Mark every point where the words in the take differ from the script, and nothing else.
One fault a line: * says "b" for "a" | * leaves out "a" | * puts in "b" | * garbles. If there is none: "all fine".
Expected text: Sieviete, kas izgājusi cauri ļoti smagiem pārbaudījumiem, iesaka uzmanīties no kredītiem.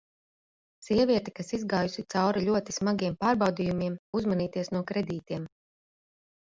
* leaves out "iesaka"